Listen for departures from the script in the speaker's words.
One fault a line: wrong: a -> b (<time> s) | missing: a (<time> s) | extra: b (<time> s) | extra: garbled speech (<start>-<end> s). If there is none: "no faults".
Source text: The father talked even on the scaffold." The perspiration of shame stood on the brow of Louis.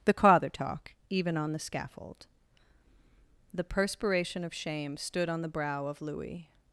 wrong: talked -> talk (0.5 s)